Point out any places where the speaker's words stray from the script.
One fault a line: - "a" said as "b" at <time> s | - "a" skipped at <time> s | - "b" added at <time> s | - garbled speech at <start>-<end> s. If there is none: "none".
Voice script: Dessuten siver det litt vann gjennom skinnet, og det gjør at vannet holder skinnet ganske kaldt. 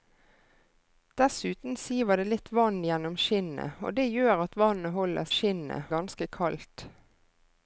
none